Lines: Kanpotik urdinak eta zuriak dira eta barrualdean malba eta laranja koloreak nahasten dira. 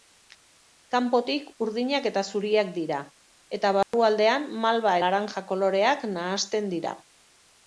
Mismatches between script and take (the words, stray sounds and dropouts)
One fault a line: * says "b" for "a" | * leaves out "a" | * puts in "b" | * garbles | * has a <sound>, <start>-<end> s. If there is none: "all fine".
* has a dropout, 3.8-3.9 s
* leaves out "eta"